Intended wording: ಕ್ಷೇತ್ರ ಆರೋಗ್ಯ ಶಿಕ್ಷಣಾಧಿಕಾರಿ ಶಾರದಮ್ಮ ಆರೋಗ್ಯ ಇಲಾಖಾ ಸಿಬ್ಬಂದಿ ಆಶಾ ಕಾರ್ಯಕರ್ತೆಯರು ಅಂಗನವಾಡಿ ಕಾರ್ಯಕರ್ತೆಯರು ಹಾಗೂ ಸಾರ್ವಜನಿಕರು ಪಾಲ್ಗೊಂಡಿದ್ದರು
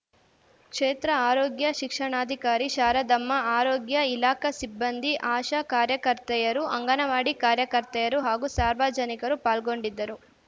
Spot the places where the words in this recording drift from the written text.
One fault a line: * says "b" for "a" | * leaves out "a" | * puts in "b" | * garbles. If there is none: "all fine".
all fine